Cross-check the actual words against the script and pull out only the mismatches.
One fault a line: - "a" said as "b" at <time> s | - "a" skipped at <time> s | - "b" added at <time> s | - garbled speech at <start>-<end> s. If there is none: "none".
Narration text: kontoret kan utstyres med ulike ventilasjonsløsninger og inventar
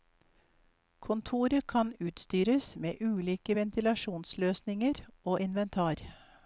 none